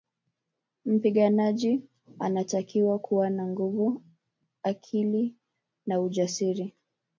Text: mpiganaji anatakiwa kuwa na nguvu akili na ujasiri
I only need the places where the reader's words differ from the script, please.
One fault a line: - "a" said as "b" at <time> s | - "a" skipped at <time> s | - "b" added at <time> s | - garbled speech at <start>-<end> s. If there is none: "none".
none